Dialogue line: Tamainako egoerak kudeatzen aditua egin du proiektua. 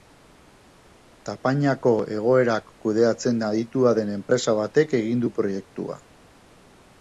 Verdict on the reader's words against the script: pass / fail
fail